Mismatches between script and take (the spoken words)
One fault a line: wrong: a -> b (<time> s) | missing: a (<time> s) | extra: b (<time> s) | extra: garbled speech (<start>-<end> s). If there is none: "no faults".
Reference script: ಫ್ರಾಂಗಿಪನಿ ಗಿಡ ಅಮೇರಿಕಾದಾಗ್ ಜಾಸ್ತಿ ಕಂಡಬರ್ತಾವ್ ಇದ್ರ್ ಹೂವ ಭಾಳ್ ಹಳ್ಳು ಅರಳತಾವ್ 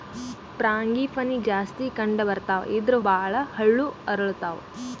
missing: ಗಿಡ ಅಮೇರಿಕಾದಾಗ್ (1.4 s)
missing: ಹೂವ (3.0 s)